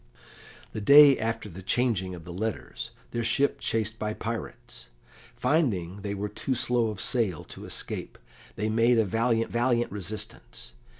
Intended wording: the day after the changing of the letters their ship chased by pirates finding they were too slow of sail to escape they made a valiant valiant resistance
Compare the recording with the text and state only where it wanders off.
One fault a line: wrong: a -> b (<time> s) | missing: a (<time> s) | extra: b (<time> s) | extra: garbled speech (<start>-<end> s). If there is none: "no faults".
no faults